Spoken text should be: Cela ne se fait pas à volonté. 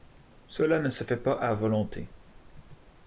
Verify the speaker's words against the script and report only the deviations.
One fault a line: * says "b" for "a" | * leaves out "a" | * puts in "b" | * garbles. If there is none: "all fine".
all fine